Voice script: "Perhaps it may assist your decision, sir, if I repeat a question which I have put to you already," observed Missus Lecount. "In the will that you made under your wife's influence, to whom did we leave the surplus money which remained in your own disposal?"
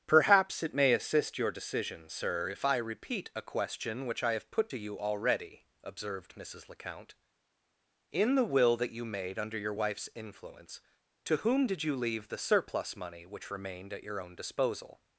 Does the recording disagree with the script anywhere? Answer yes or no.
yes